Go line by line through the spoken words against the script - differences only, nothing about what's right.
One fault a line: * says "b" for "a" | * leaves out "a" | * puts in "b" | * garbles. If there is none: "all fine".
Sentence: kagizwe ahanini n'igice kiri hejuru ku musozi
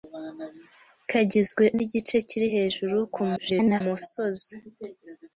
* leaves out "ahanini"
* garbles